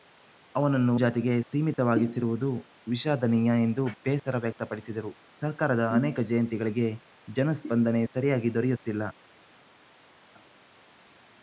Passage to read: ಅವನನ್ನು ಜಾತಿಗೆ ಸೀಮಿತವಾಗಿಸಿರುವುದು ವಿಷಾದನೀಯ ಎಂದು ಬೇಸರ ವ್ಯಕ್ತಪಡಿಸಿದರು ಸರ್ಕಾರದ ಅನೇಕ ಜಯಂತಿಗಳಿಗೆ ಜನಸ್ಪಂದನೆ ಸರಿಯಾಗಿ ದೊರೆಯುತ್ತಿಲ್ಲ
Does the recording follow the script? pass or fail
pass